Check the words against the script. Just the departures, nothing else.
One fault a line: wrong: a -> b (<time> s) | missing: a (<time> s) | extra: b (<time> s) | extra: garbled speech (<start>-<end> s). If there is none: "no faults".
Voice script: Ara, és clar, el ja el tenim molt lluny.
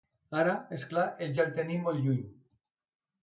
no faults